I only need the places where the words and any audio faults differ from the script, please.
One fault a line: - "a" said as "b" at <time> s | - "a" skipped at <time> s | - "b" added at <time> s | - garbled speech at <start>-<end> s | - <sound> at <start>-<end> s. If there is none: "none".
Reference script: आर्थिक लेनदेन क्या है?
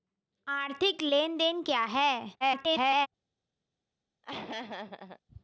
- garbled speech at 2.4-3.1 s
- laugh at 4.2-5.2 s